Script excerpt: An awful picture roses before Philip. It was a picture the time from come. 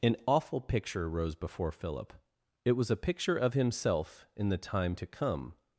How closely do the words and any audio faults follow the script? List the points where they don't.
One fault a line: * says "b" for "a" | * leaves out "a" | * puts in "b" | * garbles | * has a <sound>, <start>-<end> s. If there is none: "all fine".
* says "rose" for "roses"
* puts in "of himself in"
* says "to" for "from"